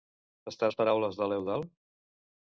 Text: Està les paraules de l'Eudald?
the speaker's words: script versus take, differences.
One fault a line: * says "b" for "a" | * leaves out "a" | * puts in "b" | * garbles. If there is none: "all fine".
all fine